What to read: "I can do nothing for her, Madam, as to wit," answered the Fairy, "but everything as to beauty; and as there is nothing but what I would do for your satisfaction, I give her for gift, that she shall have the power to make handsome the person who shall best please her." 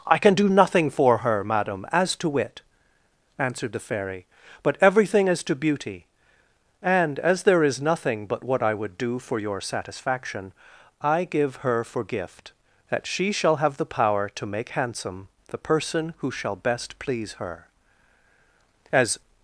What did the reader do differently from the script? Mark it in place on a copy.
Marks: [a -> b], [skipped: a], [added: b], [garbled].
"I can do nothing for her, Madam, as to wit," answered the Fairy, "but everything as to beauty; and as there is nothing but what I would do for your satisfaction, I give her for gift, that she shall have the power to make handsome the person who shall best please her." [added: As]